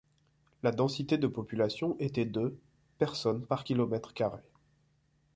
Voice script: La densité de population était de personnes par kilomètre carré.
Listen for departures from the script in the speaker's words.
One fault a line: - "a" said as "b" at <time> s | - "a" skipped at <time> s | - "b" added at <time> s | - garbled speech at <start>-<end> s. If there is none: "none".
none